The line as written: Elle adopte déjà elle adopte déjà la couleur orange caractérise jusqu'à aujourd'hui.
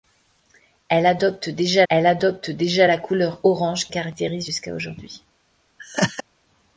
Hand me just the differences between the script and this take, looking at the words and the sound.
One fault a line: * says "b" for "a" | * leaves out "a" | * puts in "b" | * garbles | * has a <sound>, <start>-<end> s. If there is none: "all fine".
* has a laugh, 5.8-6.2 s